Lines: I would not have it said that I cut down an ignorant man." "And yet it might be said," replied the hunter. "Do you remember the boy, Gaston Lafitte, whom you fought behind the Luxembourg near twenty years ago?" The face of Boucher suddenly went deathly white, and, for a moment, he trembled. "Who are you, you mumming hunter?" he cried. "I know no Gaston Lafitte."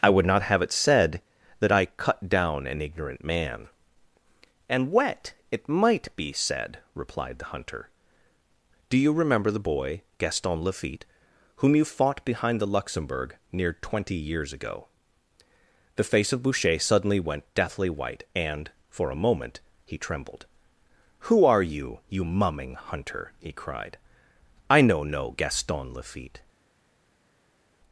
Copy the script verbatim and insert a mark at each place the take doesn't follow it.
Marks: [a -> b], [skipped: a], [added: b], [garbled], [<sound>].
I would not have it said that I cut down an ignorant man." "And [yet -> wet] it might be said," replied the hunter. "Do you remember the boy, Gaston Lafitte, whom you fought behind the Luxembourg near twenty years ago?" The face of Boucher suddenly went deathly white, and, for a moment, he trembled. "Who are you, you mumming hunter?" he cried. "I know no Gaston Lafitte."